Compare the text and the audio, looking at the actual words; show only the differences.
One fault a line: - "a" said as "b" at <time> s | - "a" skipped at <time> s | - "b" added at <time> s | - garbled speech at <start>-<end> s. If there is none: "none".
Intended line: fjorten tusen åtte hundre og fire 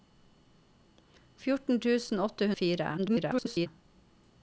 - "hundre" skipped at 2.5 s
- garbled speech at 3.0-3.7 s